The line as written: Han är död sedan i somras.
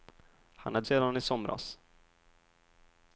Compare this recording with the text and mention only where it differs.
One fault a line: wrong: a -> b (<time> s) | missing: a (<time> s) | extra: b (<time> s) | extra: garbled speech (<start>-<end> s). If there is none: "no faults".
missing: död (0.8 s)